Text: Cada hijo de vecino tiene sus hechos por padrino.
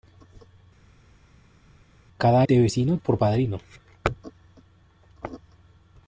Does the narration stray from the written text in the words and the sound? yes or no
yes